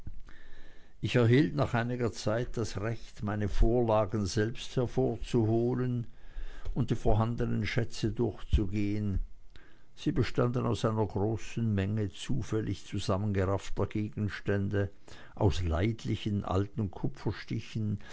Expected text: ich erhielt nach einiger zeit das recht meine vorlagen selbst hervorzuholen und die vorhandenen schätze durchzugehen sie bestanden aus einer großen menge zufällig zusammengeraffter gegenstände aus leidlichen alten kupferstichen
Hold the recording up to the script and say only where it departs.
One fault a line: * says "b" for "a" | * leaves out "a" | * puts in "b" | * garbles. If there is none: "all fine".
all fine